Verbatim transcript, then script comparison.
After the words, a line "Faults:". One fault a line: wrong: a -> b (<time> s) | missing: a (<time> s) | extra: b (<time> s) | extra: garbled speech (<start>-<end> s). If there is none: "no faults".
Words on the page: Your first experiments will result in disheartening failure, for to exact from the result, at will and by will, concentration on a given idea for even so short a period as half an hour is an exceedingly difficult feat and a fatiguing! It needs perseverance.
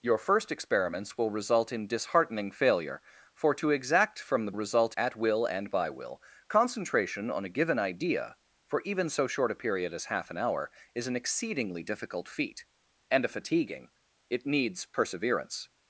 Your first experiments will result in disheartening failure, for to exact from the result, at will and by will, concentration on a given idea for even so short a period as half an hour is an exceedingly difficult feat and a fatiguing! It needs perseverance.
Faults:
no faults